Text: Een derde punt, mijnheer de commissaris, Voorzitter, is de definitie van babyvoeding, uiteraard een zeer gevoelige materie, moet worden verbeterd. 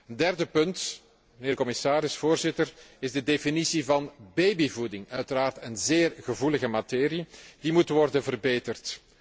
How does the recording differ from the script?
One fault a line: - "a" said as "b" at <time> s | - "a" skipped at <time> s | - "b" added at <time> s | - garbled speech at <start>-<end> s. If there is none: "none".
- "die" added at 7.6 s